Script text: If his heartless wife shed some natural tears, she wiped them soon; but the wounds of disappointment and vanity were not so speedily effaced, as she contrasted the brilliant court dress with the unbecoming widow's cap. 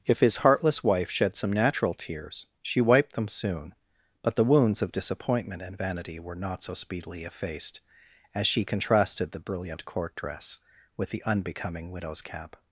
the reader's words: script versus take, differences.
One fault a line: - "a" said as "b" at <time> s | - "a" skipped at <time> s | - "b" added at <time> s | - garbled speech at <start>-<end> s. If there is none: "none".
none